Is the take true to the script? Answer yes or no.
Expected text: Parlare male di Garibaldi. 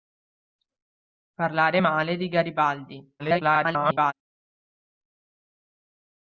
no